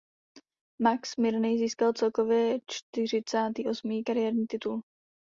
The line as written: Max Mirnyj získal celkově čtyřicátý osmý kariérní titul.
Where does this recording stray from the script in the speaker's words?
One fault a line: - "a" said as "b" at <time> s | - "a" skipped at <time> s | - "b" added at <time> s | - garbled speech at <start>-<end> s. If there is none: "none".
none